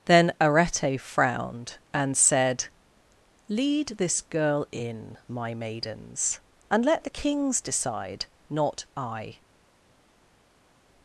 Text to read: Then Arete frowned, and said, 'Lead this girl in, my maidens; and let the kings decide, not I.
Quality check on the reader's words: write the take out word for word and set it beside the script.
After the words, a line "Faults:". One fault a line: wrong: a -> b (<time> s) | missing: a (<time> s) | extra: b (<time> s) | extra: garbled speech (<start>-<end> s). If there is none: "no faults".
Then Arete frowned, and said, 'Lead this girl in, my maidens; and let the kings decide, not I.
Faults:
no faults